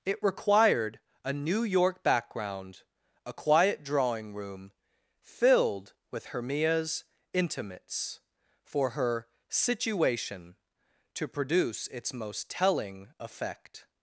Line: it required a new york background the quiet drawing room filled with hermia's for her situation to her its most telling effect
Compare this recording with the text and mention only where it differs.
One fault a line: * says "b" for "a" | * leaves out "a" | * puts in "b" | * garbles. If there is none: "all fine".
* says "a" for "the"
* puts in "intimates"
* says "produce" for "her"